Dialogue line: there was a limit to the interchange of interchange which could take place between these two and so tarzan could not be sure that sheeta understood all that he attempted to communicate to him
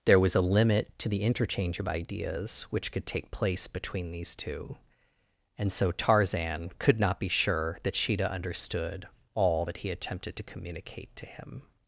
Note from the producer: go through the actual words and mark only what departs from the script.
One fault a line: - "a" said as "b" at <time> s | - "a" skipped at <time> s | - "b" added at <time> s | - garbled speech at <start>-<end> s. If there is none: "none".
- "interchange" said as "ideas" at 1.9 s